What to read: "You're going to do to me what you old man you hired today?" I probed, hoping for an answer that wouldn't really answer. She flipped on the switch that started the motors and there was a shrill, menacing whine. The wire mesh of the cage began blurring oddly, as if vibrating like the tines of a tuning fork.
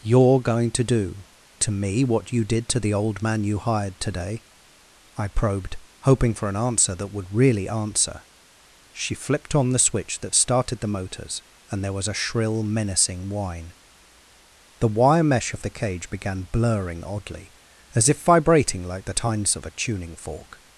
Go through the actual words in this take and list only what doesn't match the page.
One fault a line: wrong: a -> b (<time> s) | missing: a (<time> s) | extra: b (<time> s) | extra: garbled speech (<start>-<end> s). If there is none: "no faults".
extra: did to the (2.4 s)
wrong: wouldn't -> would (7.1 s)